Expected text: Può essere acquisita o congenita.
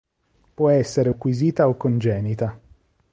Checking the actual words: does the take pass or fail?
pass